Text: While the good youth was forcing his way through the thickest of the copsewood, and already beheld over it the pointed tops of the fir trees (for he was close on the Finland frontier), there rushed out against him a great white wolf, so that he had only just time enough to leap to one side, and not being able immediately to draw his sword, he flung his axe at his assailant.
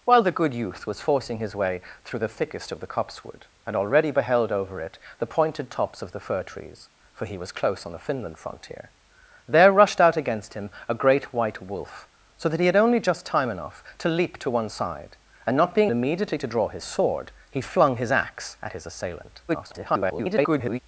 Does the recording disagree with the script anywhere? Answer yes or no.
yes